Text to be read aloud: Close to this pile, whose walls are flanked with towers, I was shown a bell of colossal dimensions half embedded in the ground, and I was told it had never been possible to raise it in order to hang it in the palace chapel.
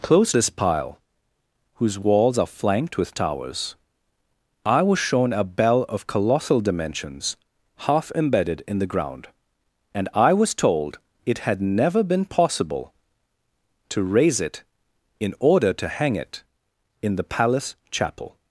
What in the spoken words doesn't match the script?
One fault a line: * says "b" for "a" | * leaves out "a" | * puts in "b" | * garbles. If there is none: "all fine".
* leaves out "to"